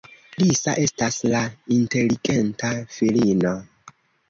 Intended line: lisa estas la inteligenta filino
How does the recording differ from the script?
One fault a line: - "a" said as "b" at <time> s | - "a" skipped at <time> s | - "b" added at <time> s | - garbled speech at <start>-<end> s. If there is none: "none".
none